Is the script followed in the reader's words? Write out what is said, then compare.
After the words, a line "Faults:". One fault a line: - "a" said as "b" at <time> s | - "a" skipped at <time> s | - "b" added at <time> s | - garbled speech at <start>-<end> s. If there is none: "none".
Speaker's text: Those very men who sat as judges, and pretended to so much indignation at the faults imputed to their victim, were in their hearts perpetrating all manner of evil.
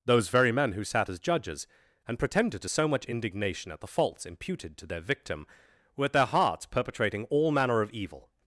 Those very men who sat as judges, and pretended to so much indignation at the faults imputed to their victim, were at their hearts perpetrating all manner of evil.
Faults:
- "in" said as "at" at 6.1 s